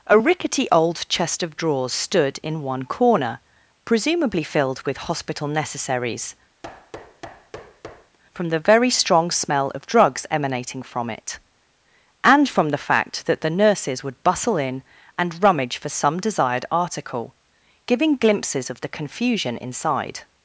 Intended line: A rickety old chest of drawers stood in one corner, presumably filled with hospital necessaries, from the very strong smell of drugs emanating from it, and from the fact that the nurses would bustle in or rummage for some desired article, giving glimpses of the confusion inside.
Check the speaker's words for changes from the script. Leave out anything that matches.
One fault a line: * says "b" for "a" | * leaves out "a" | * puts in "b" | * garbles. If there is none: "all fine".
* says "and" for "or"